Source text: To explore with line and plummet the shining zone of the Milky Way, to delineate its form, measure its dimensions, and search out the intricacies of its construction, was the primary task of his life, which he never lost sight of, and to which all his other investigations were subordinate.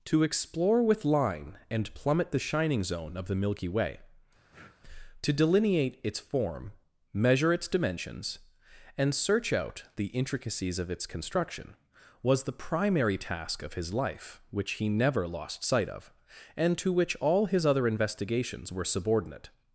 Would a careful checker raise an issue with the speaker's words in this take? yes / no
no